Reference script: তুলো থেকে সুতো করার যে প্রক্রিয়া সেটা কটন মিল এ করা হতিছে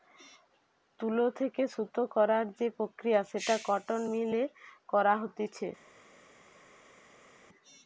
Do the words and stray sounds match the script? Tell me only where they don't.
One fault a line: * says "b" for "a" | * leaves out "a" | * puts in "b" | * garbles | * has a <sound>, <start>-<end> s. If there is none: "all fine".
all fine